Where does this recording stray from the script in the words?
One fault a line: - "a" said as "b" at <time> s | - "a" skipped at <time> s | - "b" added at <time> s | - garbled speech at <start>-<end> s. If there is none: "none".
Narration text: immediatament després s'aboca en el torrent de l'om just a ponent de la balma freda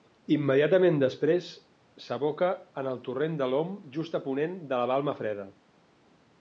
none